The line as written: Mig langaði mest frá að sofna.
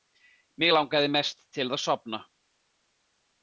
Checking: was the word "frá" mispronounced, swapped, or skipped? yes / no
yes